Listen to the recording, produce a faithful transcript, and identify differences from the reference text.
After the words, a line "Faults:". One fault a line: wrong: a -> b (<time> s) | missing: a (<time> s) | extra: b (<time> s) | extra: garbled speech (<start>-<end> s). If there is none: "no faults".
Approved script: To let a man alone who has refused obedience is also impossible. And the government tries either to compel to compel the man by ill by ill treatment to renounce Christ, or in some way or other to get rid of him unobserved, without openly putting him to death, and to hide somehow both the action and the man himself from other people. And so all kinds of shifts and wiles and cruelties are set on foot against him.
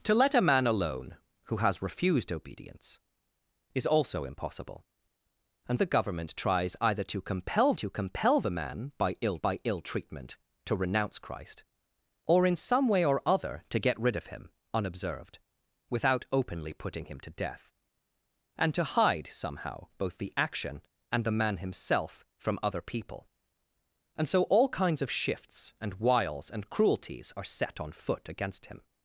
To let a man alone who has refused obedience is also impossible. And the government tries either to compel to compel the man by ill by ill treatment to renounce Christ, or in some way or other to get rid of him unobserved, without openly putting him to death, and to hide somehow both the action and the man himself from other people. And so all kinds of shifts and wiles and cruelties are set on foot against him.
Faults:
no faults